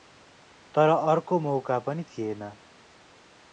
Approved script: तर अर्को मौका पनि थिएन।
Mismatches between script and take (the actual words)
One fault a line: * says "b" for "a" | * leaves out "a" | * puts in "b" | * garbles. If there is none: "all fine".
all fine